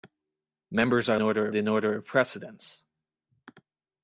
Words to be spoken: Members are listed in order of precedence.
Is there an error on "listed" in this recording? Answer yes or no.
yes